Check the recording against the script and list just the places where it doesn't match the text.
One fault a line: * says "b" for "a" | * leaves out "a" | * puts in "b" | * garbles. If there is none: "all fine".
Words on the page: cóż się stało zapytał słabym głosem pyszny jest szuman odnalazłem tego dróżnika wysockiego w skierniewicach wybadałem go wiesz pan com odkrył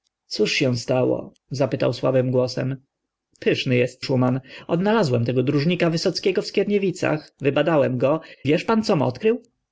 all fine